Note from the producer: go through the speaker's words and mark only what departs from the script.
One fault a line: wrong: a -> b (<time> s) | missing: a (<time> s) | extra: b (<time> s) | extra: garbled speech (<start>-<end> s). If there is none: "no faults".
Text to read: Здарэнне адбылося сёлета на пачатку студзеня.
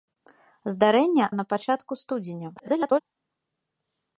missing: адбылося сёлета (1.2 s)
extra: garbled speech (2.6-3.0 s)